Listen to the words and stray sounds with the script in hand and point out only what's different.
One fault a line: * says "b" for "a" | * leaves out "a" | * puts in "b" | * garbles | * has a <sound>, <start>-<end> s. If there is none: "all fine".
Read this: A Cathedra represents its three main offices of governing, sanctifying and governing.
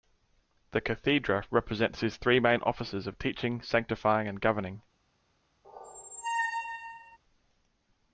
* says "The" for "A"
* says "his" for "its"
* says "teaching" for "governing"
* has a squeak, 5.6-7.2 s